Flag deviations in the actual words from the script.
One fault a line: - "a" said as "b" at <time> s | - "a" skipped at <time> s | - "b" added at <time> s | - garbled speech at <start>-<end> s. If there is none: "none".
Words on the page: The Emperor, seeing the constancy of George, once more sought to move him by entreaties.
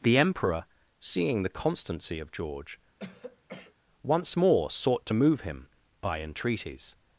none